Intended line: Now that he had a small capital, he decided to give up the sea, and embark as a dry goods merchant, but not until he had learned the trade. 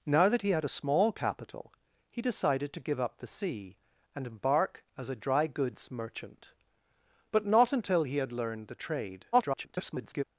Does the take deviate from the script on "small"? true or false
false